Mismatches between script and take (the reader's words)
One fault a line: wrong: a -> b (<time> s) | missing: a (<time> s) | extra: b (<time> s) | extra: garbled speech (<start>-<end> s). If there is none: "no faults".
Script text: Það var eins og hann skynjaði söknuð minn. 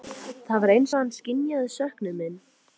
no faults